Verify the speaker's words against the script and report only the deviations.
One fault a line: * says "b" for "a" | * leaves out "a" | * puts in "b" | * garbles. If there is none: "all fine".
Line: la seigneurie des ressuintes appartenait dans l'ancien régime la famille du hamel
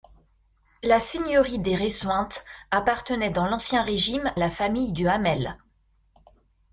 all fine